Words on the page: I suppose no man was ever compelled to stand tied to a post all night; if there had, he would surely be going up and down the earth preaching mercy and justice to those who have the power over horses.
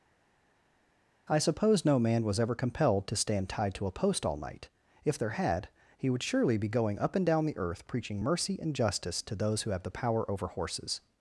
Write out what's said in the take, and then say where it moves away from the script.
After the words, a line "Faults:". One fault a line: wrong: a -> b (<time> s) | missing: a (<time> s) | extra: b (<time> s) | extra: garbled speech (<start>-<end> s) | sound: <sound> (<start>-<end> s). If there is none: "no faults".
I suppose no man was ever compelled to stand tied to a post all night; if there had, he would surely be going up and down the earth preaching mercy and justice to those who have the power over horses.
Faults:
no faults